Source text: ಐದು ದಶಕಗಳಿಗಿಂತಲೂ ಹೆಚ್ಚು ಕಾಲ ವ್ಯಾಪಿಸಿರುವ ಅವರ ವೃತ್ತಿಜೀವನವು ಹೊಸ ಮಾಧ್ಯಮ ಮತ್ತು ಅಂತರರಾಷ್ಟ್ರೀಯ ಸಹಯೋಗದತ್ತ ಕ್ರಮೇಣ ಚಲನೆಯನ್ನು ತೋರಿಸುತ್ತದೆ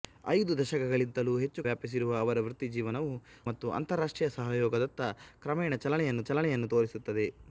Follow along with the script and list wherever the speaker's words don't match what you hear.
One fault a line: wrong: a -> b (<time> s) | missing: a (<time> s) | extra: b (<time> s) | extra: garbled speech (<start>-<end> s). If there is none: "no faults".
missing: ಕಾಲ (1.6 s)
missing: ಹೊಸ ಮಾಧ್ಯಮ (3.1 s)
extra: ಚಲನೆಯನ್ನು (6.3 s)